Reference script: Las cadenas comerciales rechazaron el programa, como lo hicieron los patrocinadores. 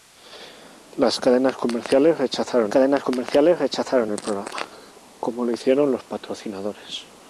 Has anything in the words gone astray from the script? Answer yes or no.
yes